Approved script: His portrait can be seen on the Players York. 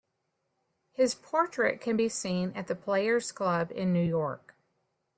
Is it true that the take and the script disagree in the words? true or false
true